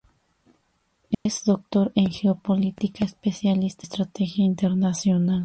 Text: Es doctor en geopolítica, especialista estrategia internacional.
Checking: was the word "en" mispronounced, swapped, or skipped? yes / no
no